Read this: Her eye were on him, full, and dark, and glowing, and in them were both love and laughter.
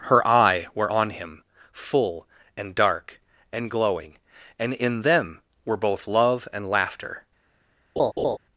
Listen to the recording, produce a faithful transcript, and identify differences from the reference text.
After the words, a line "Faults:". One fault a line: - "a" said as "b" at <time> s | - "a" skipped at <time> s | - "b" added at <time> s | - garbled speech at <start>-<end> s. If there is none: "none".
Her eye were on him, full, and dark, and glowing, and in them were both love and laughter.
Faults:
none